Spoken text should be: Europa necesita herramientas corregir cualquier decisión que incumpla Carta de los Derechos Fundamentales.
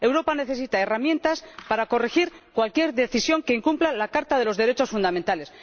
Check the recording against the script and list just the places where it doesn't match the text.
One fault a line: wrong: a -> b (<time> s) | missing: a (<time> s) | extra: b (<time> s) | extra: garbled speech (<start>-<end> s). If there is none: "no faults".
extra: para (1.7 s)
extra: la (3.9 s)